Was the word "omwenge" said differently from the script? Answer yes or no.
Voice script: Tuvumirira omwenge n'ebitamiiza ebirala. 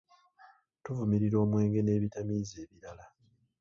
no